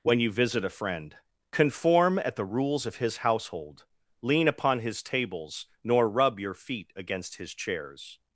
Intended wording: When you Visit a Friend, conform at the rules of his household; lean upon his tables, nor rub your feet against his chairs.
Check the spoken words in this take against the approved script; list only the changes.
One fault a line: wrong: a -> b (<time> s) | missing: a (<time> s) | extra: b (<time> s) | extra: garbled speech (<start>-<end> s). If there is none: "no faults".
no faults